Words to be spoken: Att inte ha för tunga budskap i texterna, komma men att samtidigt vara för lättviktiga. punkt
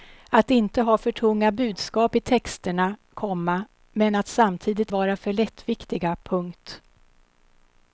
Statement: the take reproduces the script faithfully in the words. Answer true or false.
true